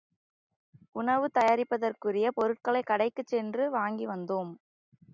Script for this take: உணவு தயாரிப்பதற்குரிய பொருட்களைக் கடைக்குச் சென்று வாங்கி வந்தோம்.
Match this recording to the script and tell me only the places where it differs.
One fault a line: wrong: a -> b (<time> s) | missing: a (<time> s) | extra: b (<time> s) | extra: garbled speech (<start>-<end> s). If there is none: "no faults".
no faults